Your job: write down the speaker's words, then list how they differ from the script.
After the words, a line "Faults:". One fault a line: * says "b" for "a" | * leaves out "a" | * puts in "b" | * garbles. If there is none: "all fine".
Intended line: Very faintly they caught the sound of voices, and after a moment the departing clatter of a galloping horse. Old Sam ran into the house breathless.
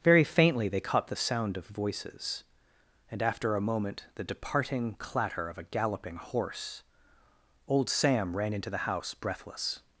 Very faintly they caught the sound of voices, and after a moment the departing clatter of a galloping horse. Old Sam ran into the house breathless.
Faults:
all fine